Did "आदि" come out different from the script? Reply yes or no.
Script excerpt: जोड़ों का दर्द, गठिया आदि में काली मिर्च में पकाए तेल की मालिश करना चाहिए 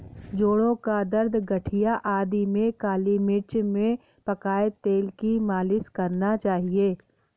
no